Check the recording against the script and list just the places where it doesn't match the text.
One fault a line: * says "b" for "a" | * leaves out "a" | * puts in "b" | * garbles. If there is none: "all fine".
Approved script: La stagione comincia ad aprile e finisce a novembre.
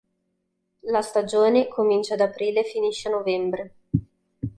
all fine